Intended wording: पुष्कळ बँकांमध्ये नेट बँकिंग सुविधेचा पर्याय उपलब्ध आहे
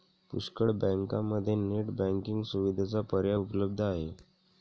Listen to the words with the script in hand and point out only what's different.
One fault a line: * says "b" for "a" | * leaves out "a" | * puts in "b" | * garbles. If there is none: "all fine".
all fine